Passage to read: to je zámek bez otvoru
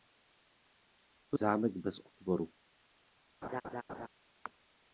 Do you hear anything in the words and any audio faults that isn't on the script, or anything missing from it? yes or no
yes